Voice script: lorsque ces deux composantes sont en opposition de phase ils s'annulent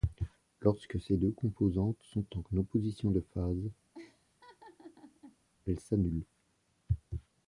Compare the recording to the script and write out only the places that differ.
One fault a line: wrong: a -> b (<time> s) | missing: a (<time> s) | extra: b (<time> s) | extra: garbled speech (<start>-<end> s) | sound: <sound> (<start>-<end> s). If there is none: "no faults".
sound: laugh (3.9-5.4 s)
wrong: ils -> elles (5.7 s)